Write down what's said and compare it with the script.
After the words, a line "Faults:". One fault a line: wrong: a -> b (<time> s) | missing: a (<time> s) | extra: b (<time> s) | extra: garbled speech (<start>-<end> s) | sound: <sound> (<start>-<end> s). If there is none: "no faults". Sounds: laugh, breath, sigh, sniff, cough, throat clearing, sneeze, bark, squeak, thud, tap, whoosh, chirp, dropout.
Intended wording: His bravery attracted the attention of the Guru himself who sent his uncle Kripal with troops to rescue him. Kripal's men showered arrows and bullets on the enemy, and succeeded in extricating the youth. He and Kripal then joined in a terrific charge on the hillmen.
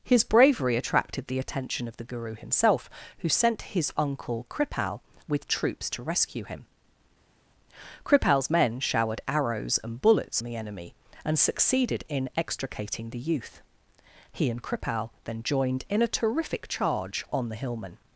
His bravery attracted the attention of the Guru himself who sent his uncle Kripal with troops to rescue him. Kripal's men showered arrows and bullets the enemy, and succeeded in extricating the youth. He and Kripal then joined in a terrific charge on the hillmen.
Faults:
missing: on (10.4 s)